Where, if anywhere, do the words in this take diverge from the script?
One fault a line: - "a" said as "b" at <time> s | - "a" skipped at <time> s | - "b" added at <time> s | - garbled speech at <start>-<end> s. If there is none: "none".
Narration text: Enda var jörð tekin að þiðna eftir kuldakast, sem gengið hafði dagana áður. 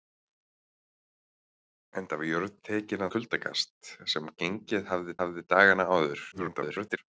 - "að þiðna eftir" skipped at 3.0 s
- "hafði" added at 5.2 s
- garbled speech at 6.3-7.0 s